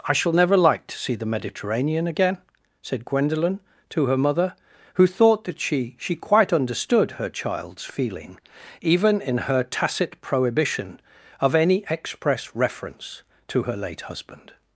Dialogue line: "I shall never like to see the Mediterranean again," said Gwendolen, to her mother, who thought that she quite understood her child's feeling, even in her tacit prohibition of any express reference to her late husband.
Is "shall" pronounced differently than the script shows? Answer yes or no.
no